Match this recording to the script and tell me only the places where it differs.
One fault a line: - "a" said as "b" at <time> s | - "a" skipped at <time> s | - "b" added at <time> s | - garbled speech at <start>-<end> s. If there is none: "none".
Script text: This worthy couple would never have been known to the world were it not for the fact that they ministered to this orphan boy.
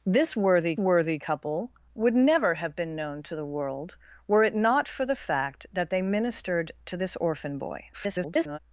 - "worthy" added at 0.8 s
- garbled speech at 7.9-8.6 s